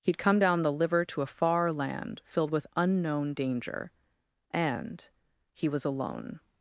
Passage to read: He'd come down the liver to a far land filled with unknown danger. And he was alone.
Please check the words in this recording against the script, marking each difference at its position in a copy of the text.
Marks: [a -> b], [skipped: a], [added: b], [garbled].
He'd come down the liver to a far land filled with unknown danger. And he was alone.